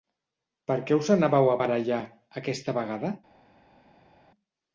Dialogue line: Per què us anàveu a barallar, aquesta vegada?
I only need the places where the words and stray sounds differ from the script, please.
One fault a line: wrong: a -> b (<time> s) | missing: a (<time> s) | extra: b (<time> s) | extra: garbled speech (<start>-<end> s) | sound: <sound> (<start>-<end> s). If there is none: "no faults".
no faults